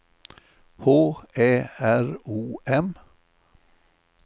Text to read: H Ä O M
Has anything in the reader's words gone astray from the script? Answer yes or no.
yes